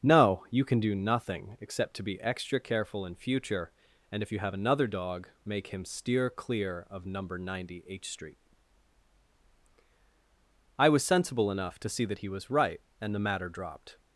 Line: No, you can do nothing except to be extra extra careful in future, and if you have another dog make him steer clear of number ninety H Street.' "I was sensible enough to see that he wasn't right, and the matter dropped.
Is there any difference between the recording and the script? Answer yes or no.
yes